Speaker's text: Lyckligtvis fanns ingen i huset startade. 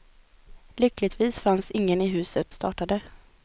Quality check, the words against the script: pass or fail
pass